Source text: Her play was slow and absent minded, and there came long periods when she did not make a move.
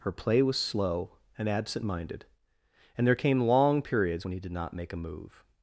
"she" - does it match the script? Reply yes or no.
no